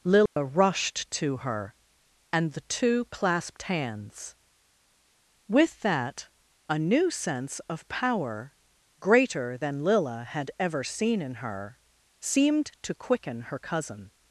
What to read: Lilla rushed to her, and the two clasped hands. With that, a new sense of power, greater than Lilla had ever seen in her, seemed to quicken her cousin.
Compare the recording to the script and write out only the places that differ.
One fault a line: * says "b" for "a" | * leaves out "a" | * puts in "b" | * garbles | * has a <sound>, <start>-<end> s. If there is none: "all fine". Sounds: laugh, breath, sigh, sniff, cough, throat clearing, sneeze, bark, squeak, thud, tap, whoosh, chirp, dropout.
* has a dropout, 0.3-0.4 s